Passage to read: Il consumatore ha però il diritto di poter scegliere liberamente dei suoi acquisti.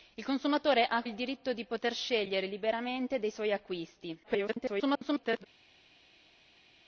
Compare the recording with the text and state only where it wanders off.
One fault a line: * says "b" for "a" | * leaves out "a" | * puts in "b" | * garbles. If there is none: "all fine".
* leaves out "però"
* garbles